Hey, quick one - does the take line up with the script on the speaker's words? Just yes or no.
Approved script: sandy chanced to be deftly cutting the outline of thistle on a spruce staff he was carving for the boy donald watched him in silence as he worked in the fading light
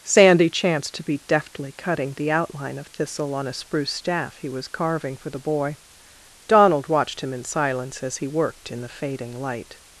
yes